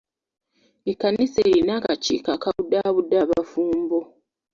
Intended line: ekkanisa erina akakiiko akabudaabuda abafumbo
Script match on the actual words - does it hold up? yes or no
yes